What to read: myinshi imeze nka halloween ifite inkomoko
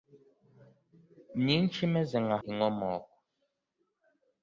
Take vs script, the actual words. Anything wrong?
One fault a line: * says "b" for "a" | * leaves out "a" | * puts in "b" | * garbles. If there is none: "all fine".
* leaves out "halloween ifite"